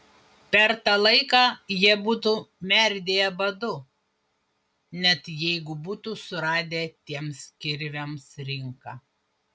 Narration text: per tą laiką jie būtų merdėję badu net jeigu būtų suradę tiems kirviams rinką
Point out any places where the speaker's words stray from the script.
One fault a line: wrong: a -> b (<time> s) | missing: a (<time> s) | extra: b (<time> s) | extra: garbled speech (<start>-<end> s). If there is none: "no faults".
no faults